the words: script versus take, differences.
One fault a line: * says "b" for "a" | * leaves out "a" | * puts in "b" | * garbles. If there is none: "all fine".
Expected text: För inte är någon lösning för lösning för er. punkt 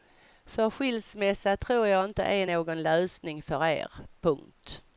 * puts in "skilsmässa tror jag"
* leaves out "lösning för"